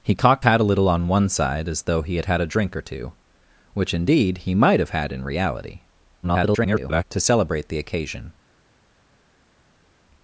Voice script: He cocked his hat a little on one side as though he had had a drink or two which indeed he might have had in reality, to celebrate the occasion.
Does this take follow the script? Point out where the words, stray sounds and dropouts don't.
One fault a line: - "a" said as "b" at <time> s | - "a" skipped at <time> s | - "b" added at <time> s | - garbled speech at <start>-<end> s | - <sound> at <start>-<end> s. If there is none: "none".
- "his" skipped at 0.5 s
- garbled speech at 6.2-7.0 s